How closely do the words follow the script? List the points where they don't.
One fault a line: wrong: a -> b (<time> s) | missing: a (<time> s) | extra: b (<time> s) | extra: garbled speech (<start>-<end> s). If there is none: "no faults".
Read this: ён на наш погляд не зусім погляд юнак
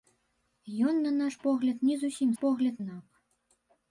no faults